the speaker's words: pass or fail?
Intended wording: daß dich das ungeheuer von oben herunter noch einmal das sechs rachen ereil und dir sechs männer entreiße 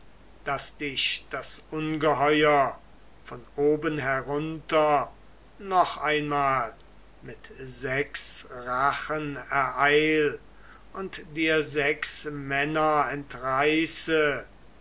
fail